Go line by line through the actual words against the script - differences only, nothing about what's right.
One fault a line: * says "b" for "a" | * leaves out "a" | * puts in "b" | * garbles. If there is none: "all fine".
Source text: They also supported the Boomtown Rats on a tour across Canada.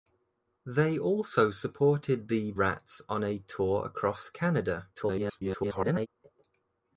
* leaves out "Boomtown"
* garbles